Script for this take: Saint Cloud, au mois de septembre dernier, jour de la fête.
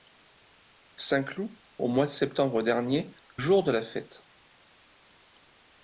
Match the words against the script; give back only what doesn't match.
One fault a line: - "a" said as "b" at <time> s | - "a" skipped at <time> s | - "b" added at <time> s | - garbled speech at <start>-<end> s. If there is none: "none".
none